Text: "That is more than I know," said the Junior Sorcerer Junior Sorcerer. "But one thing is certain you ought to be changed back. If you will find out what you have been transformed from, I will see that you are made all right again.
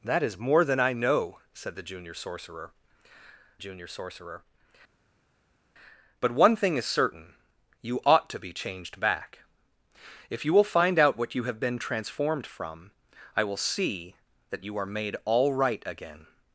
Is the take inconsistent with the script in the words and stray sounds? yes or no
no